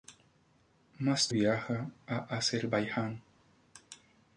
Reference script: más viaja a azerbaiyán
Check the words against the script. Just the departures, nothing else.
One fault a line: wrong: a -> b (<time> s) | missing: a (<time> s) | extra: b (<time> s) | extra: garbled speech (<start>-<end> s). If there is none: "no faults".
no faults